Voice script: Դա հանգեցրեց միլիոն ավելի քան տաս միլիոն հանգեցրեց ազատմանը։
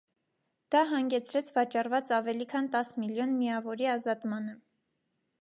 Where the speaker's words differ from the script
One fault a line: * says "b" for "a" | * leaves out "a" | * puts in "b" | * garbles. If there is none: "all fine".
* says "վաճառված" for "միլիոն"
* says "միավորի" for "հանգեցրեց"